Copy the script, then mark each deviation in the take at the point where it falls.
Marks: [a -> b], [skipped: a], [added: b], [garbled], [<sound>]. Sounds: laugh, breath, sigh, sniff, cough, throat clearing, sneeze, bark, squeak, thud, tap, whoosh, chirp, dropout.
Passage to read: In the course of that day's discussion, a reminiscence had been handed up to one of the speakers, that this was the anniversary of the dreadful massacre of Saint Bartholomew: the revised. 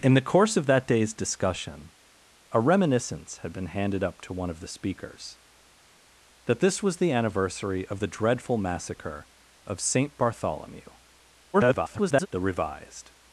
In the course of that day's discussion, a reminiscence had been handed up to one of the speakers, that this was the anniversary of the dreadful massacre of Saint Bartholomew: [garbled] the revised.